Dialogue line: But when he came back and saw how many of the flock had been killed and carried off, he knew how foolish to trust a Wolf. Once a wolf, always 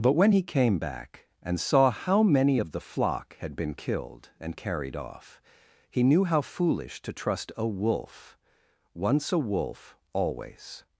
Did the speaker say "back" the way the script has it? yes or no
yes